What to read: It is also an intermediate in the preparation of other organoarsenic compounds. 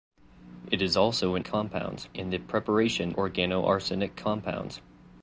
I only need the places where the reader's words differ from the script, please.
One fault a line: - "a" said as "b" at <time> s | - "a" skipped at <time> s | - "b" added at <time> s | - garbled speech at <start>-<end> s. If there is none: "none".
- "intermediate" said as "compounds" at 1.4 s
- "of other" skipped at 3.2 s